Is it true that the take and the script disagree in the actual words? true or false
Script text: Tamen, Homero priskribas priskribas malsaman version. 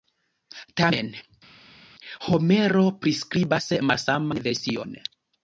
true